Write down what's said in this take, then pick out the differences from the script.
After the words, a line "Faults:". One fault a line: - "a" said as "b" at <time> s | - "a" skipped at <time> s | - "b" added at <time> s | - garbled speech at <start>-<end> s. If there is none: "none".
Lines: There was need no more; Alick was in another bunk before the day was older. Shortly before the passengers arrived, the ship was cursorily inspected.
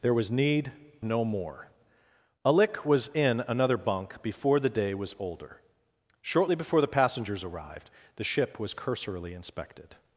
There was need no more; Alick was in another bunk before the day was older. Shortly before the passengers arrived, the ship was cursorily inspected.
Faults:
none